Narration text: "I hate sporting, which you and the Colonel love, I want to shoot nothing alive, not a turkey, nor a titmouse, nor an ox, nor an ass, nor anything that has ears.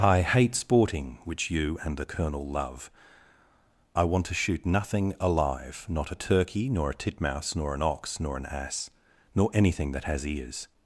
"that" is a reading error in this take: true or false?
false